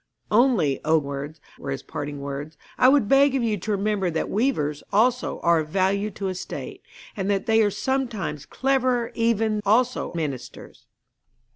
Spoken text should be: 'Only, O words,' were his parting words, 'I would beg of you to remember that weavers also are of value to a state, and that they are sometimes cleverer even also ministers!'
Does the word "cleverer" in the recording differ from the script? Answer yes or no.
no